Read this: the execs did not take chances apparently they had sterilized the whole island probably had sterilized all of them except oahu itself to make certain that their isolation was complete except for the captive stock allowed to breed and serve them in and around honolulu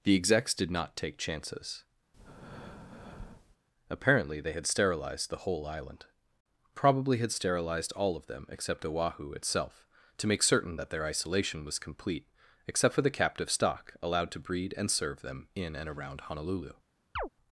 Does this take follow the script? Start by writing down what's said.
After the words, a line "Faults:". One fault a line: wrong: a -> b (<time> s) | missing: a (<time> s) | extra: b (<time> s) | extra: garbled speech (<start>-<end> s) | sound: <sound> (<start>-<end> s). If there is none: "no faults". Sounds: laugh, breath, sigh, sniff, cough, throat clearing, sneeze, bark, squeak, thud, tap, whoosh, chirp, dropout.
the execs did not take chances apparently they had sterilized the whole island probably had sterilized all of them except oahu itself to make certain that their isolation was complete except for the captive stock allowed to breed and serve them in and around honolulu
Faults:
sound: breath (2.1-3.6 s)
sound: chirp (17.2-17.3 s)